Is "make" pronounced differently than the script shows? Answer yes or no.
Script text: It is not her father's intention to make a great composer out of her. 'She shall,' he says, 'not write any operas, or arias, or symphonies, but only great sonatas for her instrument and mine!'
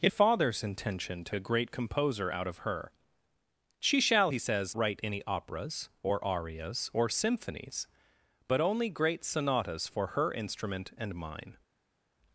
yes